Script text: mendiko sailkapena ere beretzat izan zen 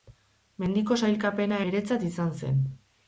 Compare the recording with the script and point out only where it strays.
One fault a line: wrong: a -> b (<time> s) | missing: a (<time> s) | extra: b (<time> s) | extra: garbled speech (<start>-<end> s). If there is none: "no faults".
missing: ere (1.6 s)